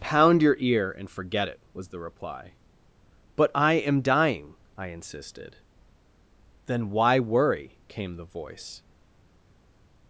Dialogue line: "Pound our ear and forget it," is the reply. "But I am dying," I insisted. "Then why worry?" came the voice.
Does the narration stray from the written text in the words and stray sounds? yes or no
yes